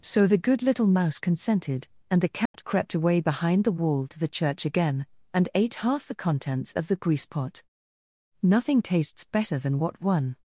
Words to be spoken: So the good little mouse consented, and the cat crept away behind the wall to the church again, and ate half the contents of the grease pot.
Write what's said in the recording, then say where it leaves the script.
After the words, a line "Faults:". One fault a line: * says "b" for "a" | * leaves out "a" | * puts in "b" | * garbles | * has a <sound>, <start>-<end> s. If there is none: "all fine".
So the good little mouse consented, and the cat crept away behind the wall to the church again, and ate half the contents of the grease pot. "Nothing tastes better than what one
Faults:
* has a dropout, 2.5-2.5 s
* puts in "Nothing tastes better than what one"